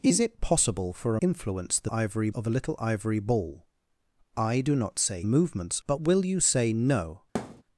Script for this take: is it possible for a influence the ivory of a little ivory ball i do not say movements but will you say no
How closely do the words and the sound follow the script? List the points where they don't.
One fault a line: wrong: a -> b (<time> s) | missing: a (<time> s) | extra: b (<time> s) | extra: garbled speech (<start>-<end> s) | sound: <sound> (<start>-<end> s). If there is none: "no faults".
sound: thud (7.3-7.6 s)